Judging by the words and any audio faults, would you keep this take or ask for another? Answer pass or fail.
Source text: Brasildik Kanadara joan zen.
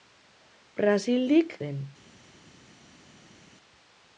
fail